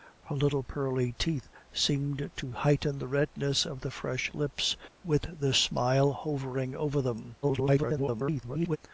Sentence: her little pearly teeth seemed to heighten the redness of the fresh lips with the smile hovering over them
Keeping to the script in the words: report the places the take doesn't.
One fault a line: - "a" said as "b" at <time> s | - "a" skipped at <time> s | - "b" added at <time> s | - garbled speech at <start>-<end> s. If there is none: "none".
- garbled speech at 7.4-8.8 s